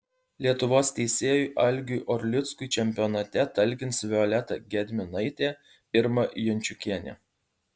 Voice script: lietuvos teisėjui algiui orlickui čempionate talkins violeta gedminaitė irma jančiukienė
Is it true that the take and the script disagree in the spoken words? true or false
false